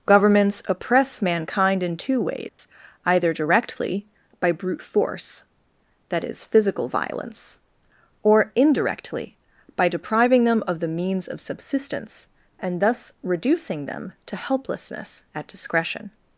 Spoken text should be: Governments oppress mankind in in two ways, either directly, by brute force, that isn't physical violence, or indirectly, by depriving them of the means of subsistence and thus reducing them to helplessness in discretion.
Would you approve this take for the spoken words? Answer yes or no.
no